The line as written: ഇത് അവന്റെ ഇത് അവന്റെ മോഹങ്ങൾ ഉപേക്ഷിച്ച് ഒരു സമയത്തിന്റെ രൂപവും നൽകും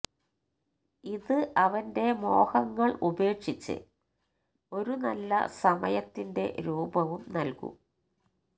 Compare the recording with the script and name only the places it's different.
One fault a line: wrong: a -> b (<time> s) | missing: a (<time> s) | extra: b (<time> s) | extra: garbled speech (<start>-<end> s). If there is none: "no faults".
missing: ഇത് അവന്റെ (2.1 s)
extra: നല്ല (5.0 s)